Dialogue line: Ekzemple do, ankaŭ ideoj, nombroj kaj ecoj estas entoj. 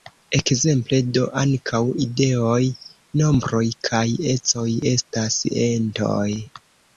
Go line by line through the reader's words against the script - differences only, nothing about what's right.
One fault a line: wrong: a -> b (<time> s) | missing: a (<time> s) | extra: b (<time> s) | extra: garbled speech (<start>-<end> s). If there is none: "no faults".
no faults